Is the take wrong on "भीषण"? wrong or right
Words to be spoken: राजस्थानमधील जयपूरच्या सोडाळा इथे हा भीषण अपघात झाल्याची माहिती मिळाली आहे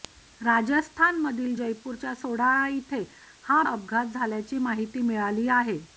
wrong